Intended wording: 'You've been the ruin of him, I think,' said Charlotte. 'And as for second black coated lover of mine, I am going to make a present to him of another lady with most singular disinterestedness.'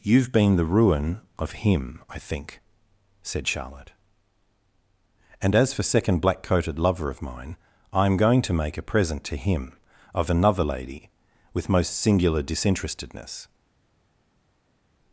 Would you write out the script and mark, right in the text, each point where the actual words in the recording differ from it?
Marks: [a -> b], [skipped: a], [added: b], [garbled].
'You've been the ruin of him, I think,' said Charlotte. 'And as for second black coated lover of mine, I am going to make a present to him of another lady with most singular disinterestedness.'